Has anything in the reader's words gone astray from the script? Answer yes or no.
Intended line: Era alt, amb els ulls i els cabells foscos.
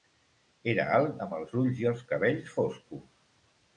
no